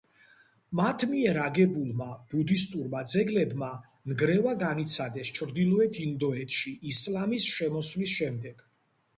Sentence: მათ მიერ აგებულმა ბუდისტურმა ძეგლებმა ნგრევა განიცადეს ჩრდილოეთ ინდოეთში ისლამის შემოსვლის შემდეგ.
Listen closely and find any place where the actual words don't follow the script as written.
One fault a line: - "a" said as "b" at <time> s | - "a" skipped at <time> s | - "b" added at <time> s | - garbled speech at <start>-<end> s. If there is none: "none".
none